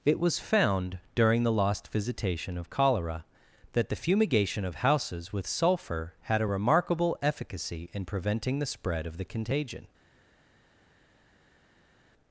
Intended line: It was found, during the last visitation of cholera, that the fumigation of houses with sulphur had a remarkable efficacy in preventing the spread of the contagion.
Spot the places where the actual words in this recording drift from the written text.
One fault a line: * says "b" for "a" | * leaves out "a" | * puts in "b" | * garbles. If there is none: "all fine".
* says "lost" for "last"